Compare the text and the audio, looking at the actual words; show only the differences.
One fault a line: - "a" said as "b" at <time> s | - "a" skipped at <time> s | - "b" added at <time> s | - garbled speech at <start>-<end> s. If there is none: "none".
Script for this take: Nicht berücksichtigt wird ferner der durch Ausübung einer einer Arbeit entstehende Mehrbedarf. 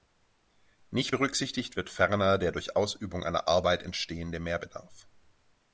- "einer" skipped at 3.5 s